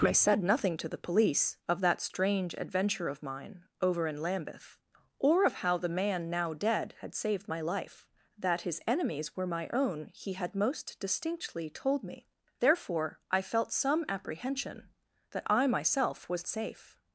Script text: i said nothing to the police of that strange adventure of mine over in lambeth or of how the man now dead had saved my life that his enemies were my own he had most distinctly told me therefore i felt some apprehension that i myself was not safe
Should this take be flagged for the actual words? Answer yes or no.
yes